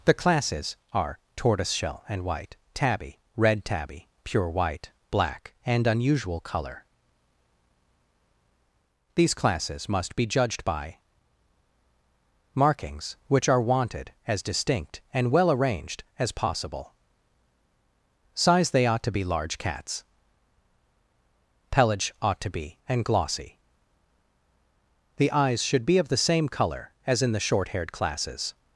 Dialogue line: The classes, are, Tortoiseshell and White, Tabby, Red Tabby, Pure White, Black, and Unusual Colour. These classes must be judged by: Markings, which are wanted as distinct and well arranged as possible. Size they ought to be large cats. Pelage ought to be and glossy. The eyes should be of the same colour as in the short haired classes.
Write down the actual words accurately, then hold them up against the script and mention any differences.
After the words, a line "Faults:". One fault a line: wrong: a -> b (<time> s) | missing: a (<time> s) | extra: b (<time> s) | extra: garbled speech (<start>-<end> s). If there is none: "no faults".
The classes, are, Tortoiseshell and White, Tabby, Red Tabby, Pure White, Black, and Unusual Colour. These classes must be judged by: Markings, which are wanted as distinct and well arranged as possible. Size they ought to be large cats. Pelage ought to be and glossy. The eyes should be of the same colour as in the short haired classes.
Faults:
no faults